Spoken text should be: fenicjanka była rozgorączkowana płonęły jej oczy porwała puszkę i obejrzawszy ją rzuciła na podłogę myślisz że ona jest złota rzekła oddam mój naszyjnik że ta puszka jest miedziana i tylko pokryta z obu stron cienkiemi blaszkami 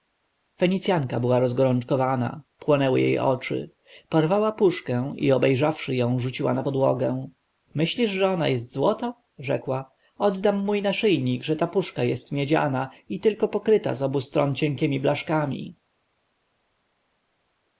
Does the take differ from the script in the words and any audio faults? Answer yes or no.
no